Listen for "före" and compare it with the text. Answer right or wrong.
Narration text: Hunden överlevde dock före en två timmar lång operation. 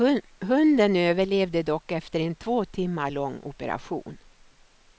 wrong